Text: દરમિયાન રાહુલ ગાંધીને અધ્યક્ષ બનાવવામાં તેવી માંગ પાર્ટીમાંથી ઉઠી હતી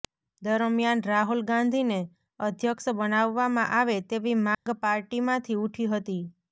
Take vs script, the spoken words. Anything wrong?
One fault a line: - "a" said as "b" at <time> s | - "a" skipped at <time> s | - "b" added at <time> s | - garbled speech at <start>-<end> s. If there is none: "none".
- "આવે" added at 3.8 s